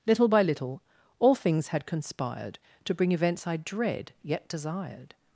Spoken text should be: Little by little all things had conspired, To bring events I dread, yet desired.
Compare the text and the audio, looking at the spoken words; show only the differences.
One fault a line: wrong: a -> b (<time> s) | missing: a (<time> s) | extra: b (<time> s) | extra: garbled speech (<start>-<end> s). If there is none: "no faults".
no faults